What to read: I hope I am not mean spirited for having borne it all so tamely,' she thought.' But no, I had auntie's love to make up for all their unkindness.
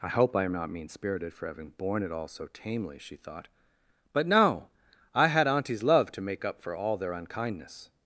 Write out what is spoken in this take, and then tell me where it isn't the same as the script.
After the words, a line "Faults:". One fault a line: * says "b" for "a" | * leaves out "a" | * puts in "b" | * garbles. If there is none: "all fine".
I hope I am not mean spirited for having borne it all so tamely,' she thought.' But no, I had auntie's love to make up for all their unkindness.
Faults:
all fine